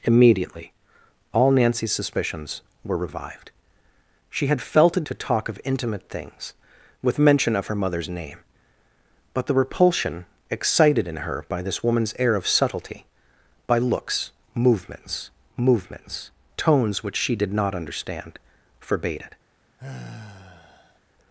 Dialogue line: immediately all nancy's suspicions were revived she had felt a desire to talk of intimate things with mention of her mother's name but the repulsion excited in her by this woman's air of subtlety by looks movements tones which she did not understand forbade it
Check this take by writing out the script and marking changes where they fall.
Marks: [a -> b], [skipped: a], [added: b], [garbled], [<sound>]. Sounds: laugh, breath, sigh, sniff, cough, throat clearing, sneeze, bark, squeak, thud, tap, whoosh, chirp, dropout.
immediately all nancy's suspicions were revived she had felt a [skipped: desire] to talk of intimate things with mention of her mother's name but the repulsion excited in her by this woman's air of subtlety by looks movements [added: movements] tones which she did not understand forbade it [sigh]